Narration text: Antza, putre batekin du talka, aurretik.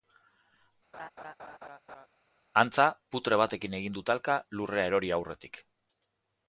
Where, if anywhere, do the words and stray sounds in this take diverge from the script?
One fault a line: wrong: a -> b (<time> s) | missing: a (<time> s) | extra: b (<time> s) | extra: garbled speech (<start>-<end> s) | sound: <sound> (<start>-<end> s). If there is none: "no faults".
sound: laugh (0.9-2.1 s)
extra: egin (3.8 s)
extra: lurrera erori (4.6 s)